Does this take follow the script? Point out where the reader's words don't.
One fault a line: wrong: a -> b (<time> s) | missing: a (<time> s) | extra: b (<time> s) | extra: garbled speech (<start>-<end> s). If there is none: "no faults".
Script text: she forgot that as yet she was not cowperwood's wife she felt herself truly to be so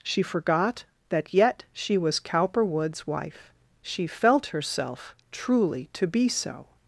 missing: as (1.4 s)
missing: not (2.2 s)